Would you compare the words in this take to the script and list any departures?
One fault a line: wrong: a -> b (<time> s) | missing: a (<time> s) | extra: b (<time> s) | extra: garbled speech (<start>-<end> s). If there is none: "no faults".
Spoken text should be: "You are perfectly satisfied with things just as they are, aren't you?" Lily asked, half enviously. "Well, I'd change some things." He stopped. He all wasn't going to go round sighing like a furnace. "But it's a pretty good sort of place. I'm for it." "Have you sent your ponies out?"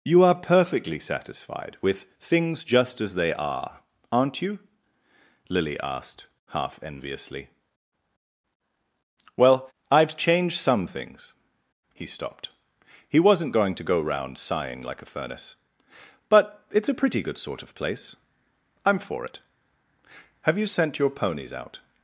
missing: all (13.2 s)